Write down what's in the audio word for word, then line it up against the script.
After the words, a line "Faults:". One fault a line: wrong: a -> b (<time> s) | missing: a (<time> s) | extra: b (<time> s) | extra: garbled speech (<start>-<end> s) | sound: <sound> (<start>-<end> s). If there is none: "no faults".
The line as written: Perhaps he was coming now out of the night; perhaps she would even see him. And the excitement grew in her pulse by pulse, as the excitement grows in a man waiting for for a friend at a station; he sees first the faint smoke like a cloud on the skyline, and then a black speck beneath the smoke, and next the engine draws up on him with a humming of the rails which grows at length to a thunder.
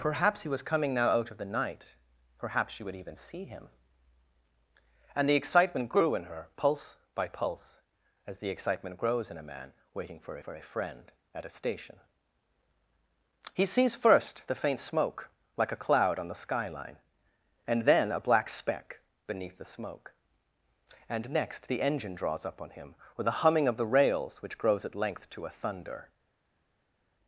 Perhaps he was coming now out of the night; perhaps she would even see him. And the excitement grew in her pulse by pulse, as the excitement grows in a man waiting for for a friend at a station; he sees first the faint smoke like a cloud on the skyline, and then a black speck beneath the smoke, and next the engine draws up on him with a humming of the rails which grows at length to a thunder.
Faults:
no faults